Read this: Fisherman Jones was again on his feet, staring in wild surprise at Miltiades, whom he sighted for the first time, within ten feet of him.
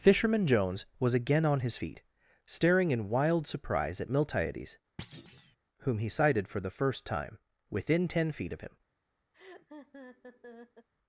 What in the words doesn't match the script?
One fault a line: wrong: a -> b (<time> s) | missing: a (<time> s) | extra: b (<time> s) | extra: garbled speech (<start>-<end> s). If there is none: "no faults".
no faults